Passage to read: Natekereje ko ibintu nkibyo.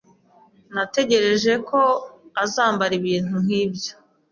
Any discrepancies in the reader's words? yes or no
yes